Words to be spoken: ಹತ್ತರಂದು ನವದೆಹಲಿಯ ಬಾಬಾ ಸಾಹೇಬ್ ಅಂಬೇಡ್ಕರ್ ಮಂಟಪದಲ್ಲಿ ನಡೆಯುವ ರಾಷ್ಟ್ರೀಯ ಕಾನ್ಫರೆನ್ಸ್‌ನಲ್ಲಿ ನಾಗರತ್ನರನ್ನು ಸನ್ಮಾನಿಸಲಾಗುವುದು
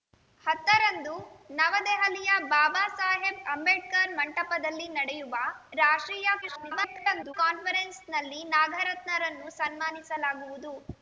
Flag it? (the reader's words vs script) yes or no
yes